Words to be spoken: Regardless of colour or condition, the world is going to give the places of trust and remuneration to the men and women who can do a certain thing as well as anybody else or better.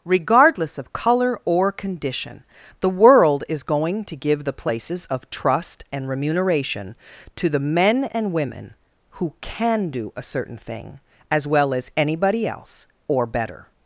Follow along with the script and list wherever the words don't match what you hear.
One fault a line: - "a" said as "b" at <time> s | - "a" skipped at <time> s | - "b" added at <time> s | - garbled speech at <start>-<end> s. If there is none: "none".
none